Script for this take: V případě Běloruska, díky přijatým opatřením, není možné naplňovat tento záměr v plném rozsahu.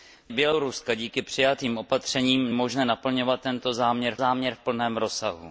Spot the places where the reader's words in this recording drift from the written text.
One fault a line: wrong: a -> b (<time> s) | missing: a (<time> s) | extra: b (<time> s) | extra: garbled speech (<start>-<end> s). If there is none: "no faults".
missing: případě (0.3 s)
missing: není (2.5 s)
extra: záměr (4.2 s)